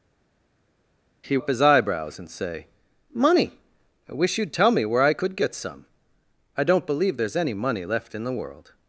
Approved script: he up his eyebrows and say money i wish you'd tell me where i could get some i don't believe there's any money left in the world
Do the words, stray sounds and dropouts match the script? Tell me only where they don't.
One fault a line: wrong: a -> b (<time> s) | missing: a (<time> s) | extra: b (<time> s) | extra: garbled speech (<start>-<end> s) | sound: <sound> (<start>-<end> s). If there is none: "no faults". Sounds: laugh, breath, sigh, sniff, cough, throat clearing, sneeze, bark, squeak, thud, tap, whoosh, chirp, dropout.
no faults